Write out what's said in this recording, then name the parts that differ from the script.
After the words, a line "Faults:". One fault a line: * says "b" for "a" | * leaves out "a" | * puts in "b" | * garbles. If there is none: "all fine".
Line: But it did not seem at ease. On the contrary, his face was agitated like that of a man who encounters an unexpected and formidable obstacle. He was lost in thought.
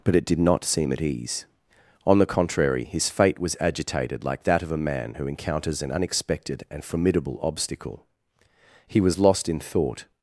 But it did not seem at ease. On the contrary, his fate was agitated like that of a man who encounters an unexpected and formidable obstacle. He was lost in thought.
Faults:
* says "fate" for "face"